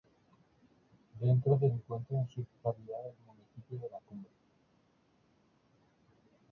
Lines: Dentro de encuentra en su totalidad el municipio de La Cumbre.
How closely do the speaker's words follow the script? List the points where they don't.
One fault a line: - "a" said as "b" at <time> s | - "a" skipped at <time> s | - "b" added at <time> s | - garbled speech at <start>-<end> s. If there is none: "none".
none